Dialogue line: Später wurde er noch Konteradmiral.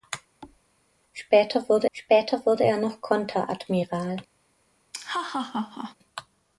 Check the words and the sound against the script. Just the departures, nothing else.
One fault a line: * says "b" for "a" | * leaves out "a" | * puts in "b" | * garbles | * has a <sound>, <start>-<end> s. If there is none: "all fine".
* has a thud, 0.4-0.6 s
* puts in "später wurde"
* has a laugh, 4.9-6.0 s